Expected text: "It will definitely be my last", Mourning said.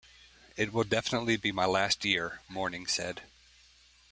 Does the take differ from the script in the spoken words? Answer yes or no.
yes